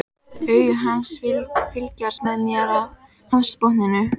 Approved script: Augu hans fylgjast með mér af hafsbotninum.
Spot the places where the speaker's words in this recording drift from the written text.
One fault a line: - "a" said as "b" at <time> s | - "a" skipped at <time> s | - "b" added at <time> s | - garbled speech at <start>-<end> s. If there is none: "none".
none